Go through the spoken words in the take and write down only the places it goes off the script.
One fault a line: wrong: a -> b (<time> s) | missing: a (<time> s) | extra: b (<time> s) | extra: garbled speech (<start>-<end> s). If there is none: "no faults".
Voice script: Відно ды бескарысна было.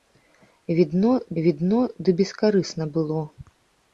extra: відно (1.4 s)